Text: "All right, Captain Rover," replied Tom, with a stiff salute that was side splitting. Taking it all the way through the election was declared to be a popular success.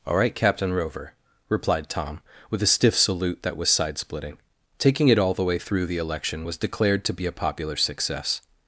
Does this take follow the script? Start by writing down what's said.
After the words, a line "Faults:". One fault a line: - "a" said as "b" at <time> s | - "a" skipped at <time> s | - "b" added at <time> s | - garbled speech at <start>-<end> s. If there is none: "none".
"All right, Captain Rover," replied Tom, with a stiff salute that was side splitting. Taking it all the way through the election was declared to be a popular success.
Faults:
none